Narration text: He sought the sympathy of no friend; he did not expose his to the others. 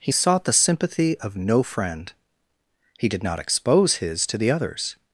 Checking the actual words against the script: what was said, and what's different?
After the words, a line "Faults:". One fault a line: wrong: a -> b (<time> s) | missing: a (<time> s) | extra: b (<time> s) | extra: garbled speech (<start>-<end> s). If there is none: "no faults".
He sought the sympathy of no friend; he did not expose his to the others.
Faults:
no faults